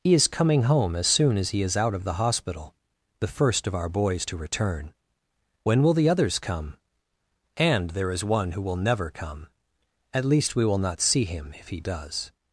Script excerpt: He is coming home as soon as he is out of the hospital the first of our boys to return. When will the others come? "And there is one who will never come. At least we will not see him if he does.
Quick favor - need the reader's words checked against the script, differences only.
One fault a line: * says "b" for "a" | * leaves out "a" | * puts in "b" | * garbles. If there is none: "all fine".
all fine